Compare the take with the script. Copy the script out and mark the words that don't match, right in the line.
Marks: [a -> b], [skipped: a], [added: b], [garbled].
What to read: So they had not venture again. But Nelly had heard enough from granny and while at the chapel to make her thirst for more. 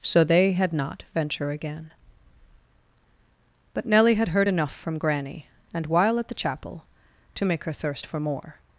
So they had not venture again. But Nelly had heard enough from granny and while at the chapel to make her thirst for more.